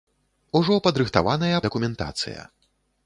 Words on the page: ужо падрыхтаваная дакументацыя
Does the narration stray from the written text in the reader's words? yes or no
no